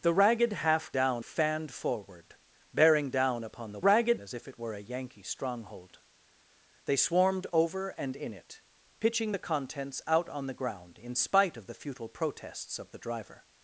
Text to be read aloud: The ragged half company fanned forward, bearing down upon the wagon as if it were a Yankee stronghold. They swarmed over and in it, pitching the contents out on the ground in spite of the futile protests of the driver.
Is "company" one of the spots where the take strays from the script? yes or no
yes